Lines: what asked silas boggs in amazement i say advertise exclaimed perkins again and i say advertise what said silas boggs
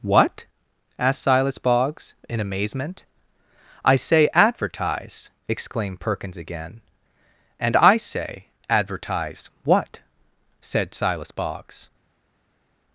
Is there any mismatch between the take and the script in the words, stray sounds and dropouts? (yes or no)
no